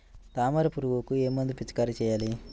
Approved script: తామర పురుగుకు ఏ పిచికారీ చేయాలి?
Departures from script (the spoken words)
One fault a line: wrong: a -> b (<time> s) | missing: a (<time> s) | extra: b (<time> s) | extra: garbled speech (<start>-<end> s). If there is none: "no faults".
extra: మందు (1.3 s)